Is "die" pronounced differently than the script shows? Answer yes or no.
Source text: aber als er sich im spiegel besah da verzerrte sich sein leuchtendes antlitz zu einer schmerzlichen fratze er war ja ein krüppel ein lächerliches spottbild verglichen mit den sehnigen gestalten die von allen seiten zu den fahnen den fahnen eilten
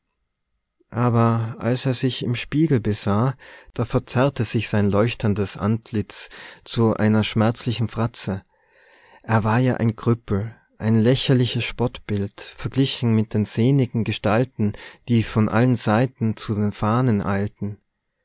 no